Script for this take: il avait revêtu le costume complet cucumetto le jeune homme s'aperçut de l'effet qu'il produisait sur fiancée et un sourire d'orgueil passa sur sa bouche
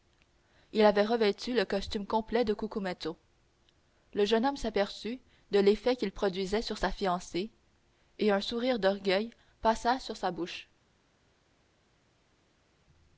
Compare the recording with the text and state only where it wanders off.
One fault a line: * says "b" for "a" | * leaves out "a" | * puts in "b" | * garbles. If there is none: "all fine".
* puts in "de"
* puts in "sa"